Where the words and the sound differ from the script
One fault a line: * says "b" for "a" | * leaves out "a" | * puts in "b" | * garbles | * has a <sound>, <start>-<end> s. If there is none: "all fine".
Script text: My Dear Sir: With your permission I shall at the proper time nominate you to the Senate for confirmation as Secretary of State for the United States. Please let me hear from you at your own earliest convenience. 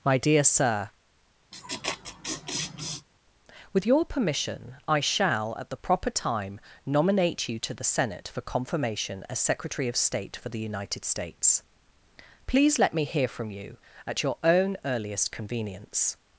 * has a laugh, 1.5-3.1 s